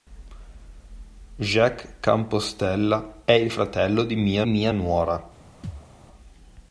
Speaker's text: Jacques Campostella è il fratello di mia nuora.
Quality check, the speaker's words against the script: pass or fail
fail